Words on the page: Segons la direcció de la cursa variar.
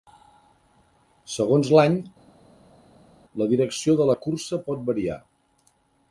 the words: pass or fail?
fail